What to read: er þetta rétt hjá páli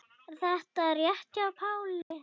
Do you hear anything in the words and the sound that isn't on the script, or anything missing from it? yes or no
yes